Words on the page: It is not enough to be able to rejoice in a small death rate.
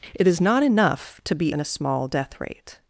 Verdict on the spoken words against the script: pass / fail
fail